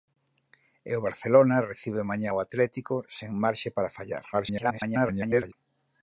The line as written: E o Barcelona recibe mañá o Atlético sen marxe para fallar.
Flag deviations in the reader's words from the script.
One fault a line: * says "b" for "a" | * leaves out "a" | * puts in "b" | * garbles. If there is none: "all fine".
* garbles